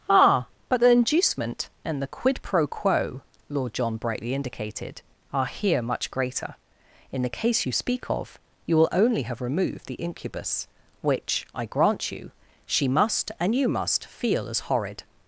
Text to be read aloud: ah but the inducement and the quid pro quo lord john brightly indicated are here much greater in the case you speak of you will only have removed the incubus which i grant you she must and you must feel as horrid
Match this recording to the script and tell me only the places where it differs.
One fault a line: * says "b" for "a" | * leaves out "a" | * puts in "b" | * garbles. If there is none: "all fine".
all fine